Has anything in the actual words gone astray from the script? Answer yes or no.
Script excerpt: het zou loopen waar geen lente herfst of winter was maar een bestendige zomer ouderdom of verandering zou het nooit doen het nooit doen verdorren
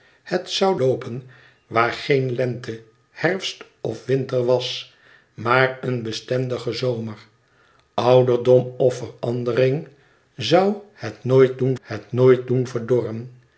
no